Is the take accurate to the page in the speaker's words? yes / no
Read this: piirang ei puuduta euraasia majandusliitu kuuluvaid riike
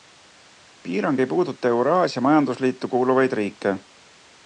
yes